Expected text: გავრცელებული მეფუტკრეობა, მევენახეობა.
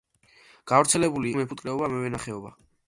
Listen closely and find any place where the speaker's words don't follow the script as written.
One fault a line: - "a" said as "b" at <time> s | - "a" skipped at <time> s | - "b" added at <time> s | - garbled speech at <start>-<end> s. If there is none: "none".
none